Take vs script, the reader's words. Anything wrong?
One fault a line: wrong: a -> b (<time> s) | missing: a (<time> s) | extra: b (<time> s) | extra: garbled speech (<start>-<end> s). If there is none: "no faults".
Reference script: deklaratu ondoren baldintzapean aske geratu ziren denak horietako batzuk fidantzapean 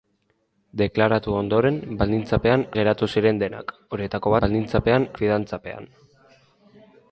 missing: aske (2.6 s)
wrong: batzuk -> baldintzapean (4.4 s)